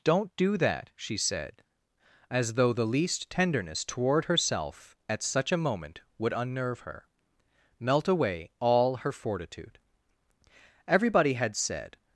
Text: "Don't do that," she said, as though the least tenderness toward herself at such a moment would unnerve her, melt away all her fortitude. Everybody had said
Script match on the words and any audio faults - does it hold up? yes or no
yes